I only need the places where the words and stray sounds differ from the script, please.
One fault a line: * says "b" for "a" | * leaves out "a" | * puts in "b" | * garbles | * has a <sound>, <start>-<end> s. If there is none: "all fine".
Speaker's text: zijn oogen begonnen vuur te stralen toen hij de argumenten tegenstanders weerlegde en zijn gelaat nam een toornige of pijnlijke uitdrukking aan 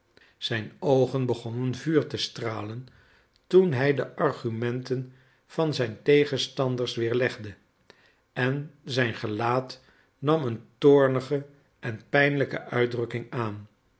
* puts in "van zijn"
* says "en" for "of"